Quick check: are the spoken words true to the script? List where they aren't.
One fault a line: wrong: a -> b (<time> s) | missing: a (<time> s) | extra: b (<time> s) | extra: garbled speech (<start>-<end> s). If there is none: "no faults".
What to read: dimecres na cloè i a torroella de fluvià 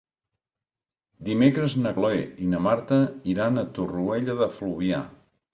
extra: na marta iran (2.5 s)